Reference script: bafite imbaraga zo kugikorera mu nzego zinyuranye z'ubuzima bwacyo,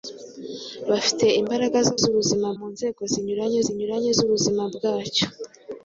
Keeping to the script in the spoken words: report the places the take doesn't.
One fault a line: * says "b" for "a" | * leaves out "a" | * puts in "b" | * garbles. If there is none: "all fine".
* says "z'ubuzima" for "kugikorera"
* puts in "zinyuranye"